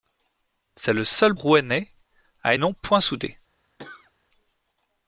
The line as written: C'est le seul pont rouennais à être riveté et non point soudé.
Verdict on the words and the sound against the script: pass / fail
fail